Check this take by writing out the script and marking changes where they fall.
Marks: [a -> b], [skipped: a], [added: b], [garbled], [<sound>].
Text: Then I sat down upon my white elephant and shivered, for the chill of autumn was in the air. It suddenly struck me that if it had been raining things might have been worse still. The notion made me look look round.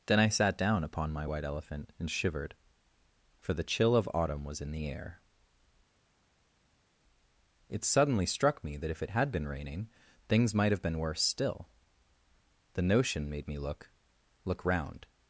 Then I sat down upon my white elephant and shivered, for the chill of autumn was in the air. It suddenly struck me that if it had been raining things might have been worse still. The notion made me look look round.